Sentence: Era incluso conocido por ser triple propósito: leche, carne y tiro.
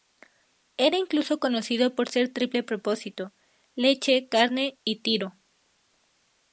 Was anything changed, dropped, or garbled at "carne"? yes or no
no